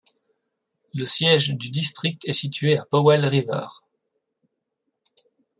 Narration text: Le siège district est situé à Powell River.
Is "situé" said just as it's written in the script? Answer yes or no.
yes